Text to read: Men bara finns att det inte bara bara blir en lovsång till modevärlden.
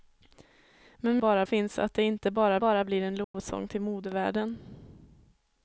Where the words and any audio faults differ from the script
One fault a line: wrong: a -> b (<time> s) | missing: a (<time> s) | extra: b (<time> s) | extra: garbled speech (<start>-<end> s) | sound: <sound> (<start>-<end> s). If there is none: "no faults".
sound: dropout (3.2-3.3 s)